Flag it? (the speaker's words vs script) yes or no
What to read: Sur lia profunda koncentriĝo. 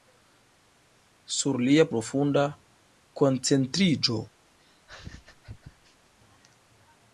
no